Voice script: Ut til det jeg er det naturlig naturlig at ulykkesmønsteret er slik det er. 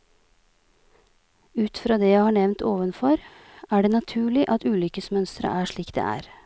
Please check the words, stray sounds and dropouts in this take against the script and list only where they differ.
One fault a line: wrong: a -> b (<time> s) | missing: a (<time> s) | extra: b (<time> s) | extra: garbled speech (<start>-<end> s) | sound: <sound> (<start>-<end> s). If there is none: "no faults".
wrong: til -> fra (1.7 s)
extra: har nevnt ovenfor (2.2 s)
missing: naturlig (4.5 s)